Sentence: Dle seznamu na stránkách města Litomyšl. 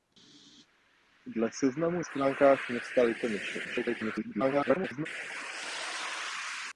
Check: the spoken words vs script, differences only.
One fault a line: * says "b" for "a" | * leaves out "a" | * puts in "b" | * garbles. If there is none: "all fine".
* leaves out "na"
* garbles